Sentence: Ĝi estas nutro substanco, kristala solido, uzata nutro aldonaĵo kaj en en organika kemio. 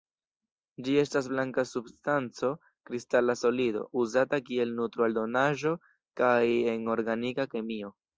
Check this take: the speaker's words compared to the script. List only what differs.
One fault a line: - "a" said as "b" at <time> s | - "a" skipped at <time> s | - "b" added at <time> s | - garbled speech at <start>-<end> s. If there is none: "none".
- "nutro" said as "blanka" at 1.3 s
- "kiel" added at 4.5 s
- "en" skipped at 6.9 s